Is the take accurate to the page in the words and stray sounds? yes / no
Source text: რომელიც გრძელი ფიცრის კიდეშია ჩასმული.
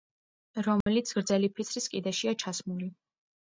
no